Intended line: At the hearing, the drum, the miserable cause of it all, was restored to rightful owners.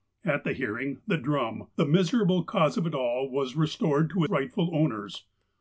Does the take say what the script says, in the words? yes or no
yes